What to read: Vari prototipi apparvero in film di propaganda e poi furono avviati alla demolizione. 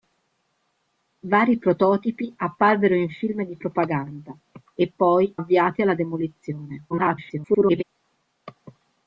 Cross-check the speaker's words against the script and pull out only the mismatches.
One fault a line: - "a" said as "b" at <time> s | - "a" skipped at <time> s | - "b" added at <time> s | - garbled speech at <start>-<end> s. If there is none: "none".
- "furono" skipped at 5.4 s
- garbled speech at 6.9-7.8 s